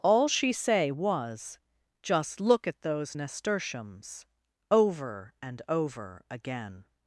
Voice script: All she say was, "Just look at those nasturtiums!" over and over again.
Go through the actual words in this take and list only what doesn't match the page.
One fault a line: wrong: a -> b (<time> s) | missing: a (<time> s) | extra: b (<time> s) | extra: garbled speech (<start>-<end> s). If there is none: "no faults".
no faults